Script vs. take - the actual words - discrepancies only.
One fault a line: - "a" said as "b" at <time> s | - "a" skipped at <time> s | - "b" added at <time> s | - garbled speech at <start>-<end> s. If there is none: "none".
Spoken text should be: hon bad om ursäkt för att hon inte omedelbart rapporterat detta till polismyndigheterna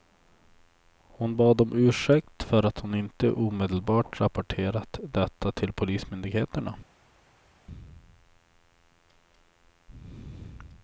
none